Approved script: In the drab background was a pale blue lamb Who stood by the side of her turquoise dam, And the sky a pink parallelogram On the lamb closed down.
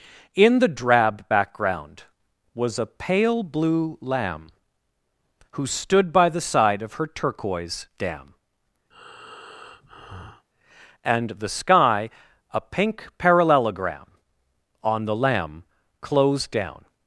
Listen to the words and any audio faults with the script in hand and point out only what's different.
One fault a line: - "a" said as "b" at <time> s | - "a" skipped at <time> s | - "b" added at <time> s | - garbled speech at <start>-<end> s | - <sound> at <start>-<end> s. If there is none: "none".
- breath at 8.9-10.5 s